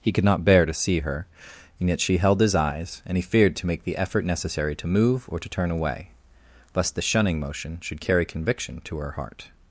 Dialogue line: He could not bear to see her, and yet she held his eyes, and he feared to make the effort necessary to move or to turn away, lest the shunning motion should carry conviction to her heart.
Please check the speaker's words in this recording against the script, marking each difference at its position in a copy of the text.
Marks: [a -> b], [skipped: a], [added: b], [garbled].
He could not bear to see her, and yet she held his eyes, and he feared to make the effort necessary to move or to turn away, lest the shunning motion should carry conviction to her heart.